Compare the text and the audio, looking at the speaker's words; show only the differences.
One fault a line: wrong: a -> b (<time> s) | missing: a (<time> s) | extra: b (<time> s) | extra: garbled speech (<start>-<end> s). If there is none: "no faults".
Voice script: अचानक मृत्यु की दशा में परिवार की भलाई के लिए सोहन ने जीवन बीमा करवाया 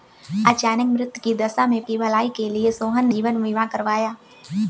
missing: परिवार (1.8 s)
missing: ने (3.1 s)